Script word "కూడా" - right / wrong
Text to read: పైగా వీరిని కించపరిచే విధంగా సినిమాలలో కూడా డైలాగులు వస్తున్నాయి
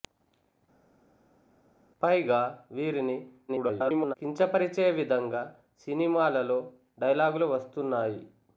wrong